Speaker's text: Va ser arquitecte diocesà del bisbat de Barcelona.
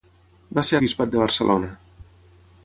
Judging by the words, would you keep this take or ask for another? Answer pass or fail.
fail